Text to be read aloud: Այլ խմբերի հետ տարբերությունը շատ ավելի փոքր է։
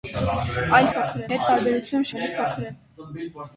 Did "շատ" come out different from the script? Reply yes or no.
yes